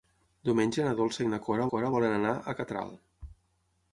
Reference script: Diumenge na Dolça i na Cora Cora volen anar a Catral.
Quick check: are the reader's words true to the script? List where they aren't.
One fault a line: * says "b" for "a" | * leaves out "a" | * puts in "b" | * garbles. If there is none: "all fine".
all fine